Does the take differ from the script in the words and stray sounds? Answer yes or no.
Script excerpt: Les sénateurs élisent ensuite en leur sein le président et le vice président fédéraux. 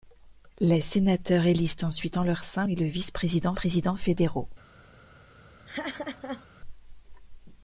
yes